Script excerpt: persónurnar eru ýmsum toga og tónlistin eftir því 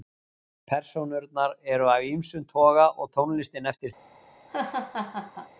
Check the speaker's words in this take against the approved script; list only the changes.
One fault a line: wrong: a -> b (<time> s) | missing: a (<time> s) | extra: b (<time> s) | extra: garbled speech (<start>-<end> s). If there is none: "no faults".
extra: af (1.9 s)